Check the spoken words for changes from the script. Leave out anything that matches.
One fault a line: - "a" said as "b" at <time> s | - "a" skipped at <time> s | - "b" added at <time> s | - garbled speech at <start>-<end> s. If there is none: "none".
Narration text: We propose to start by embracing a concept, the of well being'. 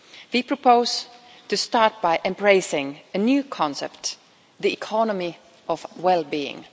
- "new" added at 3.2 s
- "economy" added at 4.7 s